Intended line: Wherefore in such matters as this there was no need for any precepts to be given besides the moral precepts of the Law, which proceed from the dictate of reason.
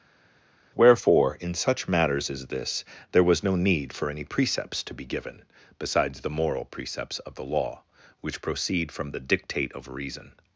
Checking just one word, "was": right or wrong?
right